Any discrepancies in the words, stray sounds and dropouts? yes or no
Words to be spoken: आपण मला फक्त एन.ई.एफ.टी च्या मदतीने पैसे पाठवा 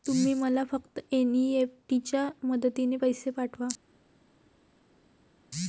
yes